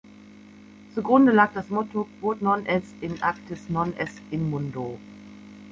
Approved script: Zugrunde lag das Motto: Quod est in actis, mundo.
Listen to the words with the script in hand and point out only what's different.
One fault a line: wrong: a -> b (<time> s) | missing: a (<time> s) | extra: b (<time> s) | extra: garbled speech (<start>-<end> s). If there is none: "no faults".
extra: non (2.4 s)
extra: non est in (3.7 s)